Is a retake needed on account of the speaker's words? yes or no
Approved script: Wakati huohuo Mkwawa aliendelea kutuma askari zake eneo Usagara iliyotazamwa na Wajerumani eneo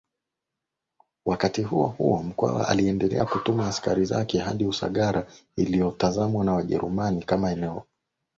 yes